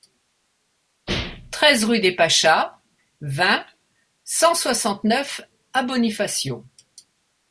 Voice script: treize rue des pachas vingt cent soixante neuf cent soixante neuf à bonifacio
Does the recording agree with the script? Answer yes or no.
no